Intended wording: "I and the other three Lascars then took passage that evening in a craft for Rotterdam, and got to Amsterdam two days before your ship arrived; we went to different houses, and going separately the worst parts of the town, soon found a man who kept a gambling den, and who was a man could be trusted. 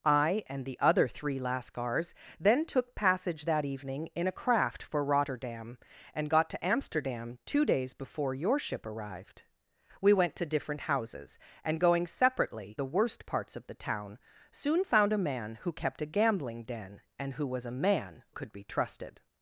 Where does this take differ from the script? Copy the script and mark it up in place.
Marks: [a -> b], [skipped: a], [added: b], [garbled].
"I and the other three Lascars then took passage that evening in a craft for Rotterdam, and got to Amsterdam two days before your ship arrived; we went to different houses, and going separately the worst parts of the town, soon found a man who kept a gambling den, and who was a man could be trusted.